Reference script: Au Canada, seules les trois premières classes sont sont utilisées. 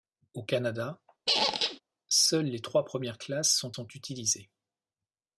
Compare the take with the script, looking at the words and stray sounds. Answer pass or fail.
fail